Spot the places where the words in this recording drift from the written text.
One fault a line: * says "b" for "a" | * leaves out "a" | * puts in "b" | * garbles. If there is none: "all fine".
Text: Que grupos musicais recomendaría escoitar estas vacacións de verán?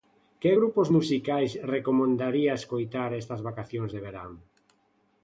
all fine